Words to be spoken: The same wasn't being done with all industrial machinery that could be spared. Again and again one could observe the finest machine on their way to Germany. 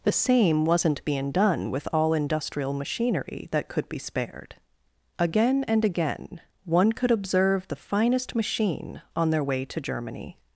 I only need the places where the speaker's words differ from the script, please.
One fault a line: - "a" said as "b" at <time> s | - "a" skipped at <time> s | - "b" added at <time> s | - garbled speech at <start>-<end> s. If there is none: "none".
none